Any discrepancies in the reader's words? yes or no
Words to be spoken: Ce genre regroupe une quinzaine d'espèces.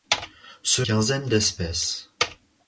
yes